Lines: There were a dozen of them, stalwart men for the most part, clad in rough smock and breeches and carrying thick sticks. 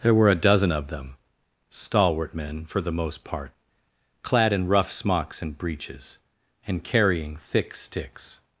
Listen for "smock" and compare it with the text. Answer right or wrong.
wrong